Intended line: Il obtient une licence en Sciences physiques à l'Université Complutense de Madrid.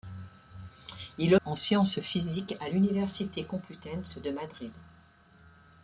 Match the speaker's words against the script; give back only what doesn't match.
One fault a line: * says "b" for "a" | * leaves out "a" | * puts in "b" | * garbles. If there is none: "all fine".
* leaves out "obtient une licence"